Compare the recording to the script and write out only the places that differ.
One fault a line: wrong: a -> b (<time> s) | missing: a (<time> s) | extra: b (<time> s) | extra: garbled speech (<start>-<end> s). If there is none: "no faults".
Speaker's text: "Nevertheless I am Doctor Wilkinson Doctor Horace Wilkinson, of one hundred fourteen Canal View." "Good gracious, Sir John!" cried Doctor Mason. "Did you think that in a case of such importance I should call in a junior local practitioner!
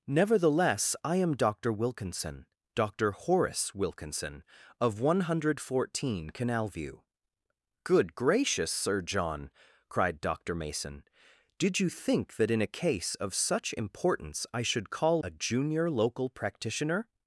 missing: in (15.2 s)